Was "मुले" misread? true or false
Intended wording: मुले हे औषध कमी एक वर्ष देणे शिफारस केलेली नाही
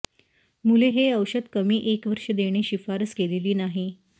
false